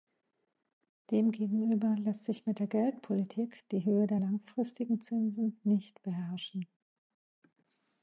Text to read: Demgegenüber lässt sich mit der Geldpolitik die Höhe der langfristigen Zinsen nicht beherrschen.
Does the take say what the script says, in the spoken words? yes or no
yes